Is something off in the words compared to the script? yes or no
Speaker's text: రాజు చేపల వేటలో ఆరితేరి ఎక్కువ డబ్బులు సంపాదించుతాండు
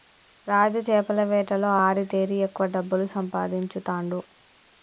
no